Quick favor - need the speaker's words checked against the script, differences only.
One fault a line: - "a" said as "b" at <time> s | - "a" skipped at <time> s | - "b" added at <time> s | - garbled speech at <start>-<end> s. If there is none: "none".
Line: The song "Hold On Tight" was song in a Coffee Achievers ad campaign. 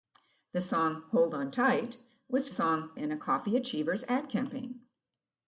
none